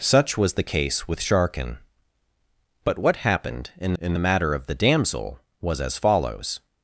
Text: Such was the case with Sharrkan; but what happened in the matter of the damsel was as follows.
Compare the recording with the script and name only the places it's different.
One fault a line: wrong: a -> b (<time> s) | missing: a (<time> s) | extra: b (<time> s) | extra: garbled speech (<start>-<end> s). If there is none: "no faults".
extra: in (4.0 s)